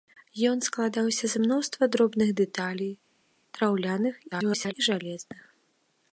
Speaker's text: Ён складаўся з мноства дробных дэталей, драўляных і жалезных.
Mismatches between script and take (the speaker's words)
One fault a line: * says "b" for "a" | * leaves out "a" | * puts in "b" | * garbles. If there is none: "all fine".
* garbles